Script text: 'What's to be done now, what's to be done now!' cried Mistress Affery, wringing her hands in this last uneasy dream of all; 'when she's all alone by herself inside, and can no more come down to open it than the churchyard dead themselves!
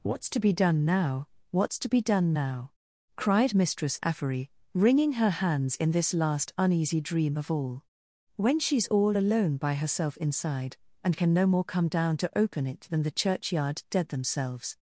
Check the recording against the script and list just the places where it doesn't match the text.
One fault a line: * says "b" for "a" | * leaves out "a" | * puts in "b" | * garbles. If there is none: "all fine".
all fine